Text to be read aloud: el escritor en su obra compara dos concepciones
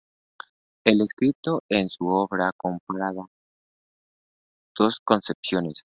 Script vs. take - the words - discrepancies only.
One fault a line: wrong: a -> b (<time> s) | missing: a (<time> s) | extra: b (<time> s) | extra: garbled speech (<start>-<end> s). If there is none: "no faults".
no faults